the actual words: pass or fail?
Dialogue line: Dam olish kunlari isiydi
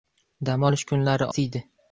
pass